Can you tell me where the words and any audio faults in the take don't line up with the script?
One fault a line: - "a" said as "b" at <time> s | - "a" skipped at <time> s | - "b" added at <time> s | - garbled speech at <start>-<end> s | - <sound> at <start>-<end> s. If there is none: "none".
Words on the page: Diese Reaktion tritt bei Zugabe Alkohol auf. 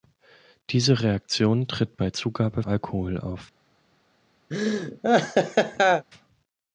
- laugh at 4.5-6.1 s